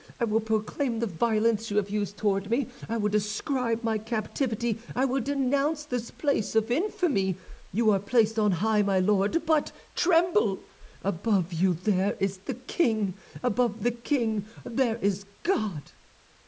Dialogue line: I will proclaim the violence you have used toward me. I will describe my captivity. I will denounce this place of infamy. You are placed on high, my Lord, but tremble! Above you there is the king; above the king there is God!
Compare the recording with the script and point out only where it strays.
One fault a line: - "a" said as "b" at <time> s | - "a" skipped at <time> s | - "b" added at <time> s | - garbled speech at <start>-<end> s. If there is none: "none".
none